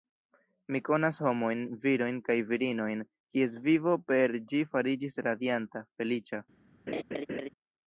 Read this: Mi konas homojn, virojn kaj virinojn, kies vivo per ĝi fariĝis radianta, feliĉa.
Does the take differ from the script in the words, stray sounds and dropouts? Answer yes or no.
yes